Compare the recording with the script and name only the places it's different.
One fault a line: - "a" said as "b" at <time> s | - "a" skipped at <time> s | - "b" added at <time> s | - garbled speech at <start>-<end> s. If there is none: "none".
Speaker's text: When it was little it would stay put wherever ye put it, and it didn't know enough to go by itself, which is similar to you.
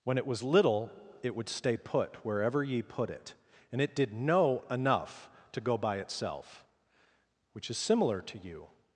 - "didn't" said as "did" at 4.0 s